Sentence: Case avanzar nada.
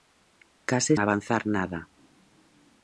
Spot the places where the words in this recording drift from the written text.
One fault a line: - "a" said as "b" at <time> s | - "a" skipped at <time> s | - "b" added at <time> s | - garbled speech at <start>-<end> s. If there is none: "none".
none